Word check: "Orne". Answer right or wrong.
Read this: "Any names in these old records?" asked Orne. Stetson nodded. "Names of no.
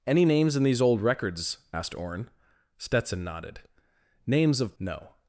right